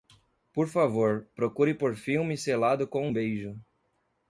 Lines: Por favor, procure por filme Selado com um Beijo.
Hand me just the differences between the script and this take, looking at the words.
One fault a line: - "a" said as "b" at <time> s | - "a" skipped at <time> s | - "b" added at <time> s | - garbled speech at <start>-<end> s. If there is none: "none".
none